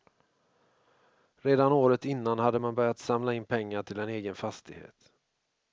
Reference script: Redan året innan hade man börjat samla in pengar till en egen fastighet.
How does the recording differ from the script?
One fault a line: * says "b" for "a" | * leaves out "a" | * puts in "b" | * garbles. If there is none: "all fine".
all fine